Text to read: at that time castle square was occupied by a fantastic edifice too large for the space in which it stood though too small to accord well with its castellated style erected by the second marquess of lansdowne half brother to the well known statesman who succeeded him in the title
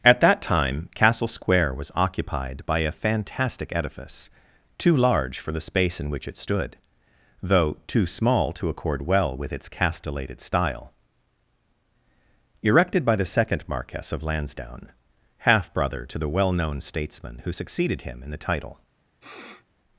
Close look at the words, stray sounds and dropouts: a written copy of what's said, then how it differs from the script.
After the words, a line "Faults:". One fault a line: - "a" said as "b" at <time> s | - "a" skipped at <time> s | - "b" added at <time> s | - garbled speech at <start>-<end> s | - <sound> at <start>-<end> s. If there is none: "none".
at that time castle square was occupied by a fantastic edifice too large for the space in which it stood though too small to accord well with its castellated style erected by the second marquess of lansdowne half brother to the well known statesman who succeeded him in the title
Faults:
- sniff at 19.2-19.7 s